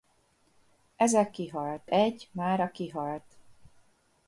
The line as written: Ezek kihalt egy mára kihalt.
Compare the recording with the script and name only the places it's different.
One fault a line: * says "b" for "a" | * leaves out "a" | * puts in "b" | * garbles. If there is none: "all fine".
all fine